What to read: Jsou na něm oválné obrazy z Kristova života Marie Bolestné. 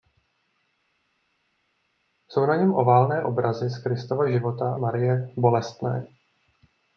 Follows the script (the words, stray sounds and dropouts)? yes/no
yes